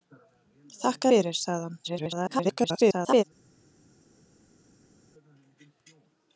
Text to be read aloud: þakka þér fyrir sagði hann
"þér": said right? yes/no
no